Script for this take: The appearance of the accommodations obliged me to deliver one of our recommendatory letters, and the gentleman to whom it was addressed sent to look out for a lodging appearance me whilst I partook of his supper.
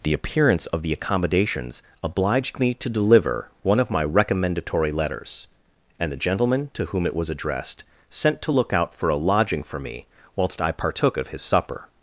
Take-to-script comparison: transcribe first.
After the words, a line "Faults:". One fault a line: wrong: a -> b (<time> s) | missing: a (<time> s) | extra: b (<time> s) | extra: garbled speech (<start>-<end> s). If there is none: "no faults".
The appearance of the accommodations obliged me to deliver one of my recommendatory letters, and the gentleman to whom it was addressed sent to look out for a lodging for me whilst I partook of his supper.
Faults:
wrong: our -> my (3.9 s)
wrong: appearance -> for (9.6 s)